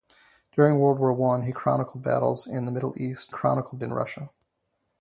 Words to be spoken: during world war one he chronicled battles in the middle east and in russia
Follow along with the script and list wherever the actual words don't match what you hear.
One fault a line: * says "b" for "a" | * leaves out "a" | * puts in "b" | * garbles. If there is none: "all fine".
* says "chronicled" for "and"